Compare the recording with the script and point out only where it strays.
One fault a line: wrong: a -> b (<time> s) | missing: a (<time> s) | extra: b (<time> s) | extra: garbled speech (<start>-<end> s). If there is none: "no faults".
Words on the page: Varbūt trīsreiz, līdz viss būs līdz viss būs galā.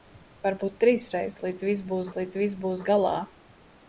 no faults